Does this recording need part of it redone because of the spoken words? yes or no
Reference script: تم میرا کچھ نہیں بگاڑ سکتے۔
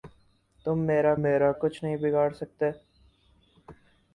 yes